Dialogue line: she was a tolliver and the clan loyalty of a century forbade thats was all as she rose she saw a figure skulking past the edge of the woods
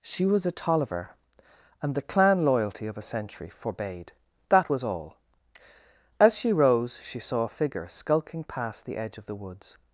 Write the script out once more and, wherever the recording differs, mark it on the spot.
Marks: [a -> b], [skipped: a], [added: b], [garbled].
she was a tolliver and the clan loyalty of a century forbade [thats -> that] was all as she rose she saw a figure skulking past the edge of the woods